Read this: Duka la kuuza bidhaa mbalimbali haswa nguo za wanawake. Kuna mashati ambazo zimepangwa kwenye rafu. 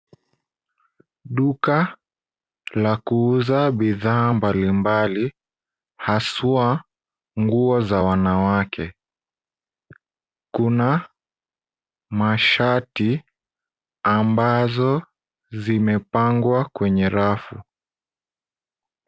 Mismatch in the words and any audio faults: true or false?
false